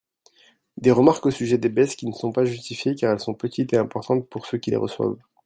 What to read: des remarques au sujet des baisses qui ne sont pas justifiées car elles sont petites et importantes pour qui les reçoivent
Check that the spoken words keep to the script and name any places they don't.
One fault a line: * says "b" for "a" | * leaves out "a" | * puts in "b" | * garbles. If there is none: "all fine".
* puts in "ceux"